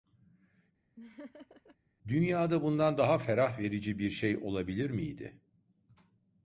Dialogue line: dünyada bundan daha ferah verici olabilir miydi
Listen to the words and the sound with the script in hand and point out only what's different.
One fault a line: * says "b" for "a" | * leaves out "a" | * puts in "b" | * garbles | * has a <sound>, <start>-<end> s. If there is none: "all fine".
* has a laugh, 1.0-1.8 s
* puts in "bir şey"